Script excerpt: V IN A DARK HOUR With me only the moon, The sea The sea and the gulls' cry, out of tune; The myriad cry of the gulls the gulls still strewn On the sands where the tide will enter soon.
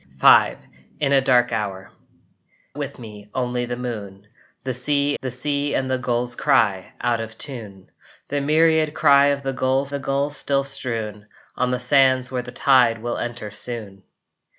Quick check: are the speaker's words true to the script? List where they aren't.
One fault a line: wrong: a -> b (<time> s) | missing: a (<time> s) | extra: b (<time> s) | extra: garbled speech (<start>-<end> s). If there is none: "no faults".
no faults